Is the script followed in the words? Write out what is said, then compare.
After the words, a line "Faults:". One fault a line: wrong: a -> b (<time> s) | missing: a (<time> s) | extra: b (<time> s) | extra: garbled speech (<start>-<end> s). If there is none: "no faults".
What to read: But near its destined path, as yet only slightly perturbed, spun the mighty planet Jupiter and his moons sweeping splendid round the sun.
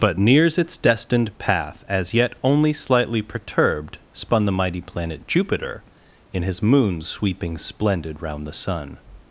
But nears its destined path, as yet only slightly perturbed, spun the mighty planet Jupiter in his moons sweeping splendid round the sun.
Faults:
wrong: near -> nears (0.2 s)
wrong: and -> in (6.3 s)